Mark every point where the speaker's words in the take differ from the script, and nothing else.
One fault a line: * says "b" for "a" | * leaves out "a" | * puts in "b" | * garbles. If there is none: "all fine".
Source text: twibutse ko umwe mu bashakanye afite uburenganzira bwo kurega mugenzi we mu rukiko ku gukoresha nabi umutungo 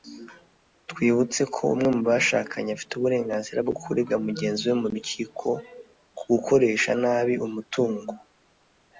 all fine